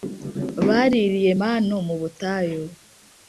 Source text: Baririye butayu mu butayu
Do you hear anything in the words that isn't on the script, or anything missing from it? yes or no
yes